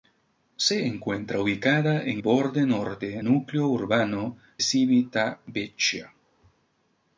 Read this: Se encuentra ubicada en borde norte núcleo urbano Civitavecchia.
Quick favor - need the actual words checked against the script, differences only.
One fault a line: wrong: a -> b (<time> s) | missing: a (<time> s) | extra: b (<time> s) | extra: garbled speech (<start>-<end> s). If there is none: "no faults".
no faults